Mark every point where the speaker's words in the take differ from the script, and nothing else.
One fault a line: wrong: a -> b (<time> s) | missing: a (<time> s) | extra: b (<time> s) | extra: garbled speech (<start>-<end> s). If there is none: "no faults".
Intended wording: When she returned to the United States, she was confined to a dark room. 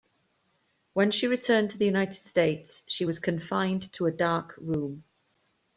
no faults